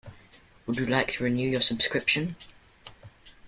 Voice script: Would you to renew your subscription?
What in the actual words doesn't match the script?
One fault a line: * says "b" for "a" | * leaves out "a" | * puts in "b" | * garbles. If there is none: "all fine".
* puts in "like"